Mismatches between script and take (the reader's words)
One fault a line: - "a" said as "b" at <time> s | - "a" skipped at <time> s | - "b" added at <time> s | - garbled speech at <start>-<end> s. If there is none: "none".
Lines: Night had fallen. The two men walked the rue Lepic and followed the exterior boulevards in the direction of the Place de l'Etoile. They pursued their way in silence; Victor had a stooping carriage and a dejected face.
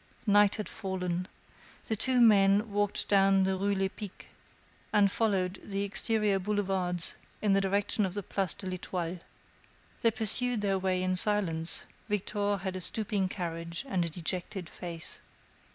- "down" added at 3.1 s